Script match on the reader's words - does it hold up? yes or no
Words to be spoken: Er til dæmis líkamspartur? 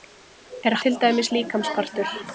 yes